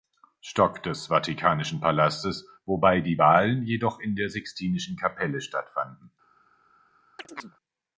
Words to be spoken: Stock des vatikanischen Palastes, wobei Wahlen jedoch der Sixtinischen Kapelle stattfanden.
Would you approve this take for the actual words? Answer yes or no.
no